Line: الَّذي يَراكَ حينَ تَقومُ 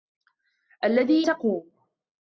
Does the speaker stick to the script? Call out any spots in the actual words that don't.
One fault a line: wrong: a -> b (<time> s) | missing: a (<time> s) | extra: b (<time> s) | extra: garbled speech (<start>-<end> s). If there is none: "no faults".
missing: يَراكَ حينَ (1.3 s)